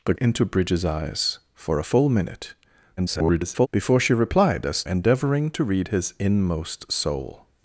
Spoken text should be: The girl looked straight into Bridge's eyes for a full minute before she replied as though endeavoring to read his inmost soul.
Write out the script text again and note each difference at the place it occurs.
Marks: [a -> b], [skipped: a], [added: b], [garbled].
The [skipped: girl looked straight] into Bridge's eyes for a full minute [garbled] before she replied as [skipped: though] endeavoring to read his inmost soul.